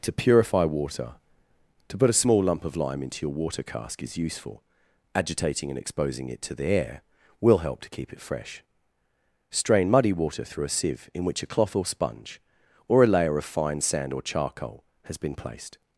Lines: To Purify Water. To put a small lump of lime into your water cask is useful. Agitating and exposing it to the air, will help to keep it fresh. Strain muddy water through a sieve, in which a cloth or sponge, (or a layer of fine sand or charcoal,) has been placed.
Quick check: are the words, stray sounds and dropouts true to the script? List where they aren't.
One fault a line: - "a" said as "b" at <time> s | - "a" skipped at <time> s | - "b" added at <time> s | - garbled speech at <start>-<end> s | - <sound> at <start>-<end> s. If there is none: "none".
none